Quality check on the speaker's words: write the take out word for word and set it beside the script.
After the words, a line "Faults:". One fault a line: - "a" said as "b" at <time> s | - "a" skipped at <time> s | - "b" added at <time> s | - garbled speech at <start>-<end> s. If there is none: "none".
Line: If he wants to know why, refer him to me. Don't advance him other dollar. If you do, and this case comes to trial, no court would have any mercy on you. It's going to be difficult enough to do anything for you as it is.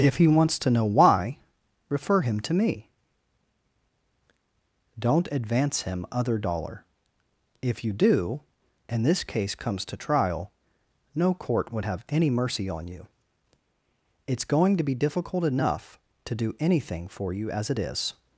If he wants to know why, refer him to me. Don't advance him other dollar. If you do, and this case comes to trial, no court would have any mercy on you. It's going to be difficult enough to do anything for you as it is.
Faults:
none